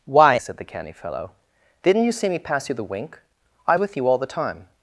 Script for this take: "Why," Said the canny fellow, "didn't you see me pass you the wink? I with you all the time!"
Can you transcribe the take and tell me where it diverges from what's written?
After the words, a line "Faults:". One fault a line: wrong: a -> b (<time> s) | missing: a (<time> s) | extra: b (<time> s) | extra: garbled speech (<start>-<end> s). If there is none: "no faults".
"Why," Said the canny fellow, "didn't you see me pass you the wink? I with you all the time!"
Faults:
no faults